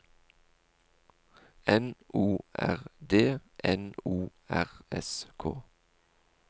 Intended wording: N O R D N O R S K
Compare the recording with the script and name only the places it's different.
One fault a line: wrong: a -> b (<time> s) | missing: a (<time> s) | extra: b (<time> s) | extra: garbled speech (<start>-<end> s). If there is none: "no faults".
no faults